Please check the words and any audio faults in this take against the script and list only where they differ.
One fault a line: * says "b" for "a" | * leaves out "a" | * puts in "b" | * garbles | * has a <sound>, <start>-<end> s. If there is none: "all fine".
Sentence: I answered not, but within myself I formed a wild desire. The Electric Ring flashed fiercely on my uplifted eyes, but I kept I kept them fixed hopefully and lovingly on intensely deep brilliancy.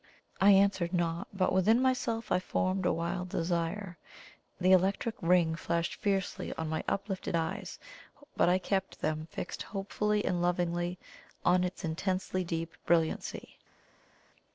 * leaves out "I kept"
* puts in "its"